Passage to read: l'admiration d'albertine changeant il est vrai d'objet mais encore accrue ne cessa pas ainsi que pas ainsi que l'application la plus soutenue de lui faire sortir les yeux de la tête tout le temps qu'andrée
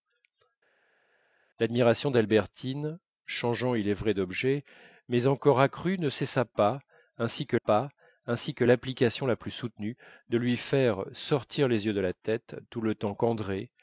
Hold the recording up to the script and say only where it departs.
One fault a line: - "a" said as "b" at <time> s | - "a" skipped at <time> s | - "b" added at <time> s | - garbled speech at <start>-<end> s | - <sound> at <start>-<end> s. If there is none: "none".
none